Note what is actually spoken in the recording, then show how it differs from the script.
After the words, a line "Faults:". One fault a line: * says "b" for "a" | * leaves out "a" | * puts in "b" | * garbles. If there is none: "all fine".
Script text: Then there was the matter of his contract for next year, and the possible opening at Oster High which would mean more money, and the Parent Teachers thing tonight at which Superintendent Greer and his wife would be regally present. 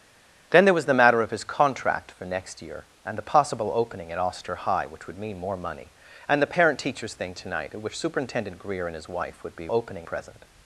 Then there was the matter of his contract for next year, and the possible opening at Oster High which would mean more money, and the Parent Teachers thing tonight at which Superintendent Greer and his wife would be opening present.
Faults:
* says "opening" for "regally"